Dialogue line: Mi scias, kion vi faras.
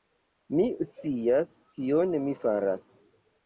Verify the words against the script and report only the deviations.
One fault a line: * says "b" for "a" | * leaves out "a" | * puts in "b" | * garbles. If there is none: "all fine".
* says "mi" for "vi"